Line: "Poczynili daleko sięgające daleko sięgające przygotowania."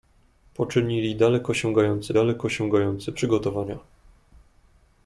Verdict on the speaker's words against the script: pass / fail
pass